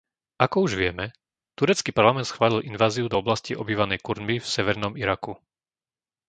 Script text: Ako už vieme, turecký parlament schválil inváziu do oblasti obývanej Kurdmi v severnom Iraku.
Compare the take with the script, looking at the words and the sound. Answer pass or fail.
pass